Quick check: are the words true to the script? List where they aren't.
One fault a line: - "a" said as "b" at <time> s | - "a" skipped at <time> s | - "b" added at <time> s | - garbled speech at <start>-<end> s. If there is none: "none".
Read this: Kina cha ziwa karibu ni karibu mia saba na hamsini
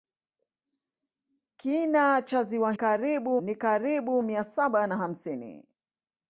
none